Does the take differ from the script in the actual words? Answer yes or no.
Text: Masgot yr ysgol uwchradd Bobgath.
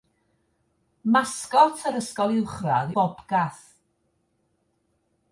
no